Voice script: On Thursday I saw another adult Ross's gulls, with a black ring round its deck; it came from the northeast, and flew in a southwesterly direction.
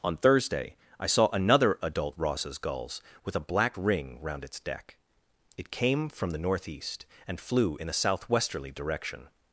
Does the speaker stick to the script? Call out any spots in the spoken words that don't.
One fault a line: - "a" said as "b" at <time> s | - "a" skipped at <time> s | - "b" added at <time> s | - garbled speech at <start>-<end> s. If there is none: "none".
none